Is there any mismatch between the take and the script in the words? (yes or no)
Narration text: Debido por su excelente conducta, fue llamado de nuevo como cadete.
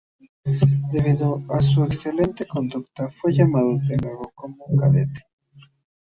yes